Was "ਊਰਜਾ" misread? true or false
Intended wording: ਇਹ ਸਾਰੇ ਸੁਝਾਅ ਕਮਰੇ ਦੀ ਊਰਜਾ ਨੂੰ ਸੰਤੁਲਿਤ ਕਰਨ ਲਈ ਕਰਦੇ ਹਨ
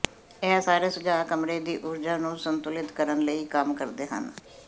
false